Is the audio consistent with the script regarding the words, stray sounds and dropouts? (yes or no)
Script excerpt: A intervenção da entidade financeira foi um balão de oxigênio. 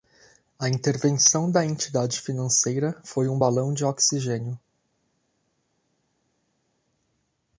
yes